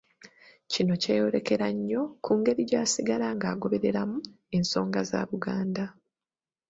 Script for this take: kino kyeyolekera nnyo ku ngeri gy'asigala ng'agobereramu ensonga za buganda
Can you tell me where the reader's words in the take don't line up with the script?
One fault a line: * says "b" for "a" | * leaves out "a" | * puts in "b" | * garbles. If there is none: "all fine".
all fine